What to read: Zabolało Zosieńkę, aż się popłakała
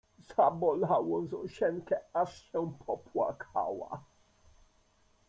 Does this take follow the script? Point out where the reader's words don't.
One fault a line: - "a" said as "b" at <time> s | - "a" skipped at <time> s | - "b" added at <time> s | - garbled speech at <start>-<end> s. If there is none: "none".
none